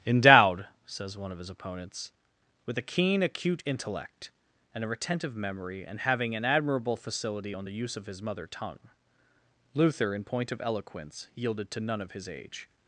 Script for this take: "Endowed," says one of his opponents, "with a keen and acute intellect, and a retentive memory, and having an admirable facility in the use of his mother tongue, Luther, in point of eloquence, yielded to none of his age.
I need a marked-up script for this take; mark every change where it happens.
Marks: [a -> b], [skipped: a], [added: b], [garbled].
"Endowed," says one of his opponents, "with a keen [skipped: and] acute intellect, and a retentive memory, and having an admirable facility [in -> on] the use of his mother tongue, Luther, in point of eloquence, yielded to none of his age.